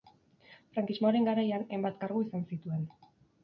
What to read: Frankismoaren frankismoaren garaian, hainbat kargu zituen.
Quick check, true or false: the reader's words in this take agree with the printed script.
false